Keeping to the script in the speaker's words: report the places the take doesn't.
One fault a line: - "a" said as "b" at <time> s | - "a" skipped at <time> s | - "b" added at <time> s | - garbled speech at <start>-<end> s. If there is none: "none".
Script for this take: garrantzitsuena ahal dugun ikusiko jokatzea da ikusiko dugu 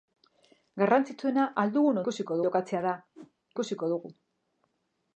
none